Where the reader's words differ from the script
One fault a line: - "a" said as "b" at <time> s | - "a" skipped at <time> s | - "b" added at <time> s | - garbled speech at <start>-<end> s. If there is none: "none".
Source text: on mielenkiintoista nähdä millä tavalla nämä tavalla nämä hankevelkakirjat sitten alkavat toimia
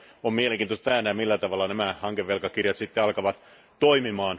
- "tavalla nämä" skipped at 1.9 s